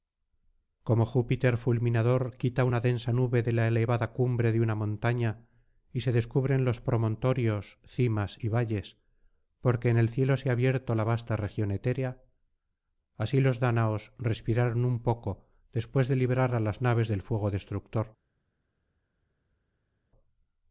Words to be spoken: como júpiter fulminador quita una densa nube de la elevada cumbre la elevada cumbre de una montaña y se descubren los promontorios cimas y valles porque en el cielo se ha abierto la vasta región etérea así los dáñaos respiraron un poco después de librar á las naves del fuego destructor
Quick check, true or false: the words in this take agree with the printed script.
false